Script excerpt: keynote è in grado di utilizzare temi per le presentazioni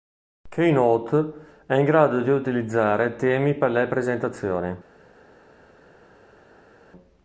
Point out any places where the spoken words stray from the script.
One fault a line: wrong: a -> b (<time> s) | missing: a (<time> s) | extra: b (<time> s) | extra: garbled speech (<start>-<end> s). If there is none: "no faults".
no faults